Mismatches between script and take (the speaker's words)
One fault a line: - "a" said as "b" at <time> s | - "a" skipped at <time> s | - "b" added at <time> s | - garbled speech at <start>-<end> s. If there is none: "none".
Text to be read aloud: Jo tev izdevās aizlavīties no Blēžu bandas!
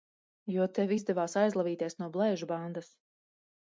none